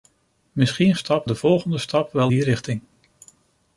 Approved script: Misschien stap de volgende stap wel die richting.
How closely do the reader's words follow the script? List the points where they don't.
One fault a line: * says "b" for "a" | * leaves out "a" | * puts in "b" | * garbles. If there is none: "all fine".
all fine